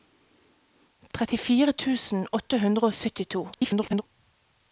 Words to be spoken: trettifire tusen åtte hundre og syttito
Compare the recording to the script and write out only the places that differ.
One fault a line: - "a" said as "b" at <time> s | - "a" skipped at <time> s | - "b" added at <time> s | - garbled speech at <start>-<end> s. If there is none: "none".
- garbled speech at 3.5-4.0 s